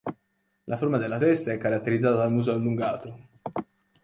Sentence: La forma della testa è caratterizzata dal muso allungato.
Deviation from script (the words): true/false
false